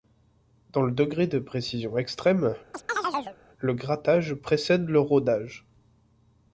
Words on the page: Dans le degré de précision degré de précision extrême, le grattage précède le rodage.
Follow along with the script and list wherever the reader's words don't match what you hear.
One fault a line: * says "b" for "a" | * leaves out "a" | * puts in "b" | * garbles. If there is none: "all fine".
* leaves out "degré de précision"